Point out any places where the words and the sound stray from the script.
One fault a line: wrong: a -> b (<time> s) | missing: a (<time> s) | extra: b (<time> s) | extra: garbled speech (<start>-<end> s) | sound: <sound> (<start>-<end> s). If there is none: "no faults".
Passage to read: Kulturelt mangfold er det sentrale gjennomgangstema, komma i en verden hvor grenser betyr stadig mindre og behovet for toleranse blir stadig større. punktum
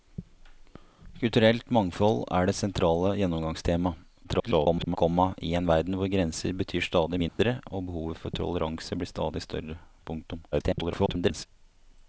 extra: garbled speech (4.2-5.0 s)
sound: dropout (7.3-7.4 s)
extra: garbled speech (10.5-11.5 s)